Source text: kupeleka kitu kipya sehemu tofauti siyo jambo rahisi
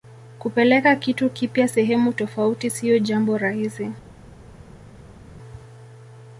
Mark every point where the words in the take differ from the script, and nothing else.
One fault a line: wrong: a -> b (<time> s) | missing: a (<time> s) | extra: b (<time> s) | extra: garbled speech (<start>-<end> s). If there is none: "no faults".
no faults